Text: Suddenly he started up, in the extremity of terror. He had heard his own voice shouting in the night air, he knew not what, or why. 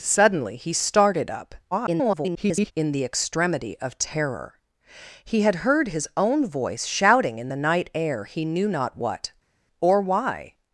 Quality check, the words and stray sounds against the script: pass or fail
fail